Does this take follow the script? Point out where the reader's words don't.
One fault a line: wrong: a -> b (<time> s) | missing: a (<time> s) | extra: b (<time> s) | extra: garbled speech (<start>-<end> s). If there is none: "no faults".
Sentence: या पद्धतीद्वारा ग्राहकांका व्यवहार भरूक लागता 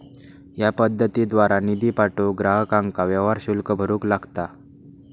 extra: निधी पाठवूक (1.6 s)
extra: शुल्क (3.4 s)